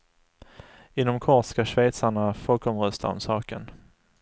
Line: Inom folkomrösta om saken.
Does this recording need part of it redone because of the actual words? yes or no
yes